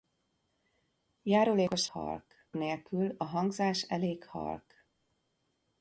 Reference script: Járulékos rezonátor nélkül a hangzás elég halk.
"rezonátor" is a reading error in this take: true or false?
true